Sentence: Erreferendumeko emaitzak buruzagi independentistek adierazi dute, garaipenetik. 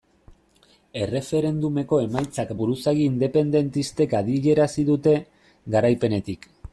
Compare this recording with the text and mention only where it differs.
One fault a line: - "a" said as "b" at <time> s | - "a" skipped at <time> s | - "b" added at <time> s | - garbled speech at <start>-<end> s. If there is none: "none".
none